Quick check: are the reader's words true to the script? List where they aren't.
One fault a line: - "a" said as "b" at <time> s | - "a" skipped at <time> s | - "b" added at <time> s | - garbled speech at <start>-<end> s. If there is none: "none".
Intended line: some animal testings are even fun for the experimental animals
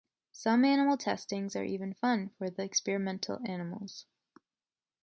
none